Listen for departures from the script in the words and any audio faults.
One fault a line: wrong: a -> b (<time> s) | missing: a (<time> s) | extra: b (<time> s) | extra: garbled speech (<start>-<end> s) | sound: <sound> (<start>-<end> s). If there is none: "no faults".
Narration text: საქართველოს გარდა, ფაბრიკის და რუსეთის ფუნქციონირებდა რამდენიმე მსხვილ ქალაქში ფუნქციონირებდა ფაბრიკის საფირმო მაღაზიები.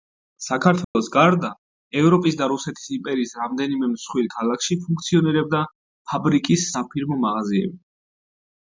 sound: dropout (0.8-1.0 s)
wrong: ფაბრიკის -> ევროპის (2.0 s)
wrong: ფუნქციონირებდა -> იმპერიის (3.0 s)